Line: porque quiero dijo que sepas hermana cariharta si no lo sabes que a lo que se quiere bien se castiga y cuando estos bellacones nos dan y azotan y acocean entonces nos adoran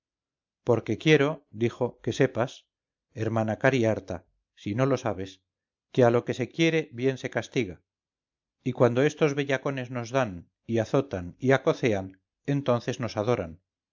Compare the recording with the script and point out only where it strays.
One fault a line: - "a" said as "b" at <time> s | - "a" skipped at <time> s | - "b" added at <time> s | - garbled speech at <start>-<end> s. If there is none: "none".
none